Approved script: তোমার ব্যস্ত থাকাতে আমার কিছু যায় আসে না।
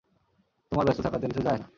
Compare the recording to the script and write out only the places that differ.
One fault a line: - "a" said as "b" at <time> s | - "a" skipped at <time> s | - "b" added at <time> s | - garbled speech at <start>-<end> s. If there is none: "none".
- "আমার" skipped at 1.3 s
- "আসে" skipped at 1.6 s